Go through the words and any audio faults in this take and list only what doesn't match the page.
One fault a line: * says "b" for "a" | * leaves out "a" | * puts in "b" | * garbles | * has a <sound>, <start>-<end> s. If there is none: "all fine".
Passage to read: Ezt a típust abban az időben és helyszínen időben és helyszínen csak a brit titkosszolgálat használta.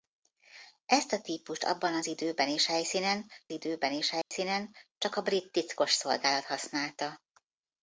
* has a dropout, 4.2-4.3 s